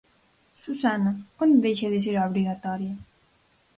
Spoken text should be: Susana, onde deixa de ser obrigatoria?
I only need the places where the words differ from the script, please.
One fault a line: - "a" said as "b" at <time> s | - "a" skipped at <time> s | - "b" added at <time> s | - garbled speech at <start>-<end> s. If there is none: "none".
none